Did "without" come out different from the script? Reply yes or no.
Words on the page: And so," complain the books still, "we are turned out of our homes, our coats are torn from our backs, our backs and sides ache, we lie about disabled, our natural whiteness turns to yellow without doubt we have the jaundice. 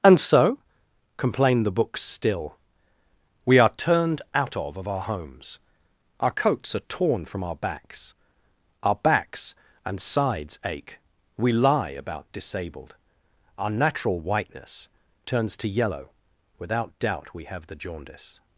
no